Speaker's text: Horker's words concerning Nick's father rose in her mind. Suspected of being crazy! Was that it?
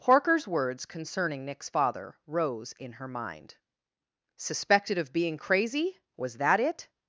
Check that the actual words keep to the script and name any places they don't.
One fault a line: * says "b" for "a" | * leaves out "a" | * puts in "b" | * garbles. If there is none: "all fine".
all fine